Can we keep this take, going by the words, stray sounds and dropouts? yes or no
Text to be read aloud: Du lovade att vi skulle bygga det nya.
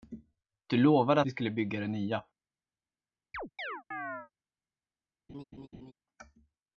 no